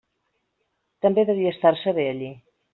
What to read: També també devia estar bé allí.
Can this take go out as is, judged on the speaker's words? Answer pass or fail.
fail